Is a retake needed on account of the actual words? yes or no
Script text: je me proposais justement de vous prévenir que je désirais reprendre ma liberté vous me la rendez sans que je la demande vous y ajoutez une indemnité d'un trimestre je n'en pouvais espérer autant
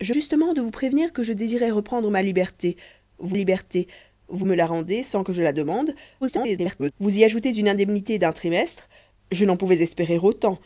yes